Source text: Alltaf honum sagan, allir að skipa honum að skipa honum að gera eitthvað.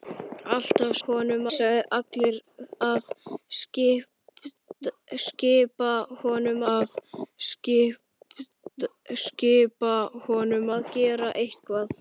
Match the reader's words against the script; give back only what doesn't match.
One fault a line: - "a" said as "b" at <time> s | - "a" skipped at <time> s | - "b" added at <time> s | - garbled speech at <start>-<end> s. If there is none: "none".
none